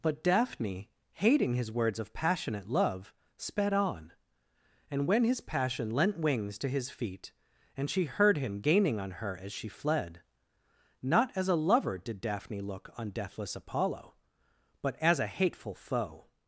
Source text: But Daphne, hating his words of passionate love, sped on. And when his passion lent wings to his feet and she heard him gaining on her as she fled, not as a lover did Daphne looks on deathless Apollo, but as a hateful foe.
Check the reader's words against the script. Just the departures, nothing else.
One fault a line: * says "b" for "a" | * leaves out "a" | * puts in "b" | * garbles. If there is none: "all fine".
* says "look" for "looks"